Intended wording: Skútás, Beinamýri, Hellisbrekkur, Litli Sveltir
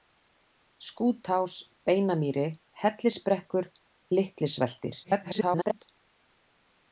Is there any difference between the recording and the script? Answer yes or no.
yes